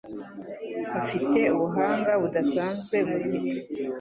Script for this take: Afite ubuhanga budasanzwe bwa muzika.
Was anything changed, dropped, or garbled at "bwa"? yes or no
yes